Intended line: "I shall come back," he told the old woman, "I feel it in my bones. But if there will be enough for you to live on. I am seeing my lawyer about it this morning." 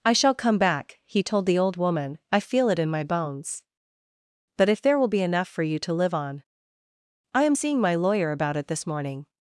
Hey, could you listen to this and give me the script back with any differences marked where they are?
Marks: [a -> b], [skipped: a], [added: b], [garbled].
"I shall come back," he told the old woman, "I feel it in my bones. But if there will be enough for you to live on. I am seeing my lawyer about it this morning."